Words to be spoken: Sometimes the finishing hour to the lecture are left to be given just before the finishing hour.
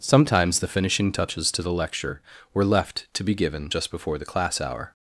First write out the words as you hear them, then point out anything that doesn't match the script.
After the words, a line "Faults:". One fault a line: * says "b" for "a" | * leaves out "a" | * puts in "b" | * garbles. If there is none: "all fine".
Sometimes the finishing touches to the lecture were left to be given just before the class hour.
Faults:
* says "touches" for "hour"
* says "were" for "are"
* says "class" for "finishing"